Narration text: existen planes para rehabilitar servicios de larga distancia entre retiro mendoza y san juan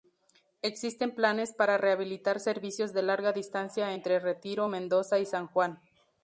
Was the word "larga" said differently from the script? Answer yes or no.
no